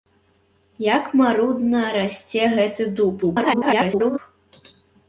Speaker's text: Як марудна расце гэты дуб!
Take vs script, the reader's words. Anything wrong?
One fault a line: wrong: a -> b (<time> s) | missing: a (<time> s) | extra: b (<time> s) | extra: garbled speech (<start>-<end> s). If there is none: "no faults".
extra: garbled speech (3.2-4.2 s)